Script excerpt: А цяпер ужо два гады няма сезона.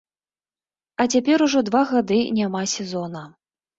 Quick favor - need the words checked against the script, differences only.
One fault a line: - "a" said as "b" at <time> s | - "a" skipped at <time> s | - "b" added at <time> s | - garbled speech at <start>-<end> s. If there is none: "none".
none